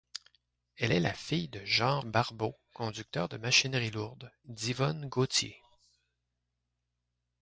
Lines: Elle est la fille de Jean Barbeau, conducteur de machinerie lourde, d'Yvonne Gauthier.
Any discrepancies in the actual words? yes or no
no